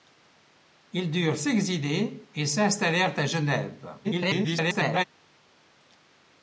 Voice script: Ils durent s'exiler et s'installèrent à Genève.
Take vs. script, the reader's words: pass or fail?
fail